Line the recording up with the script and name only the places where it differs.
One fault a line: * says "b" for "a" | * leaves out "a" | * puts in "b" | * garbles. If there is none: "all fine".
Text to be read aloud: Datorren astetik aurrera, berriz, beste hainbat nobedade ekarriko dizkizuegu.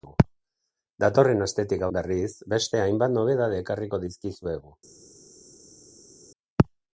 * leaves out "aurrera"